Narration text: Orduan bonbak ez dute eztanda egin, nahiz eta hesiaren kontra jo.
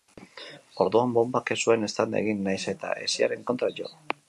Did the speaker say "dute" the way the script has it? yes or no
no